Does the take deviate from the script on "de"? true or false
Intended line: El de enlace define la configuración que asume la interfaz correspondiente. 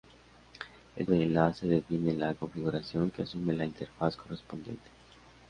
false